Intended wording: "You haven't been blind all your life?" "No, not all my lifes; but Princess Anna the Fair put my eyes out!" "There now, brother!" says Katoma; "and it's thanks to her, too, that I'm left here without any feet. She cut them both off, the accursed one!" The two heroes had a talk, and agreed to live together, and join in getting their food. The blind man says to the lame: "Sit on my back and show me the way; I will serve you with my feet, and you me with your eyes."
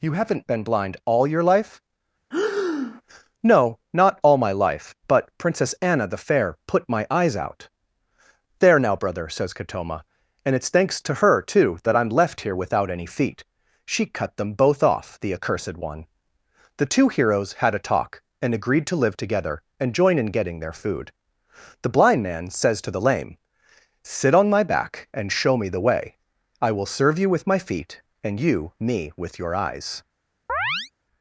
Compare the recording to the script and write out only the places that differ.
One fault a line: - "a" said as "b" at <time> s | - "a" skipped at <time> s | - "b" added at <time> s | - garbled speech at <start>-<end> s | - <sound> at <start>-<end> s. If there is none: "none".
- breath at 2.3-3.0 s
- "lifes" said as "life" at 4.5 s
- chirp at 30.5-30.9 s